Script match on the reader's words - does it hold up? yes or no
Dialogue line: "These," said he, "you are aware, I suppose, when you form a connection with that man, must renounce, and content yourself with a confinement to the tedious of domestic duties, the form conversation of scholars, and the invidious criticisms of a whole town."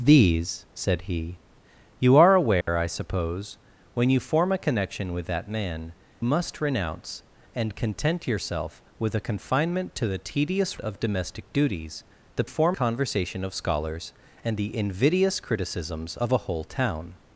yes